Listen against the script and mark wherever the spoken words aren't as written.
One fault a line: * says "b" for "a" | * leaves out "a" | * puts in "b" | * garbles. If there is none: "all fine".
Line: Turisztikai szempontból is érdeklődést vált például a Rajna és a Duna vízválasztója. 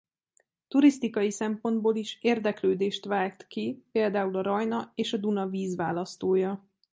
* puts in "ki"